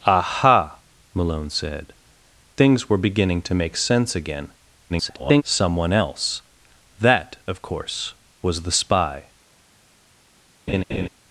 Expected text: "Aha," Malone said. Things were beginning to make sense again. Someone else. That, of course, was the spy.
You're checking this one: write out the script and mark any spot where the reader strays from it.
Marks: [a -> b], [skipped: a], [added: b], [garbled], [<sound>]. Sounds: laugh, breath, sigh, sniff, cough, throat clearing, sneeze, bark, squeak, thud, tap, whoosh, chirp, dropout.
"Aha," Malone said. Things were beginning to make sense again. [garbled] Someone else. That, of course, was the spy. [laugh]